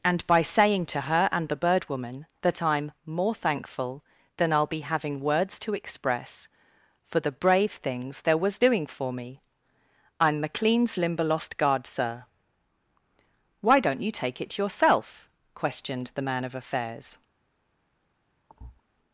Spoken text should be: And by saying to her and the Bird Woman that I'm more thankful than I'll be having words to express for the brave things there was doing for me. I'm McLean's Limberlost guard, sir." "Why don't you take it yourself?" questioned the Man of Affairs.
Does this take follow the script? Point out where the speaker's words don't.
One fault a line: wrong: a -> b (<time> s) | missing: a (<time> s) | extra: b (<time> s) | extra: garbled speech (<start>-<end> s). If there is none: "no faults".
no faults